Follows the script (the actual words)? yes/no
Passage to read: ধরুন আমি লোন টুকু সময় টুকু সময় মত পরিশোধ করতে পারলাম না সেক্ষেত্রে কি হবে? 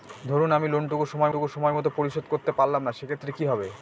yes